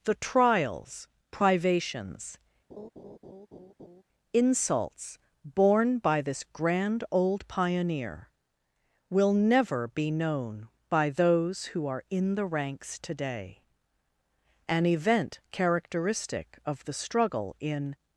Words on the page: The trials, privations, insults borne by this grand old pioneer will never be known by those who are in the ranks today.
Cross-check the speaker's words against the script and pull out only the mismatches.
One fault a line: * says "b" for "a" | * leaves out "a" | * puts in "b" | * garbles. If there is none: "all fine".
* puts in "An event characteristic of the struggle in"